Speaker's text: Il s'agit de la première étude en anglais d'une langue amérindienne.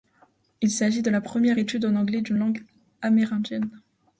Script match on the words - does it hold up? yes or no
yes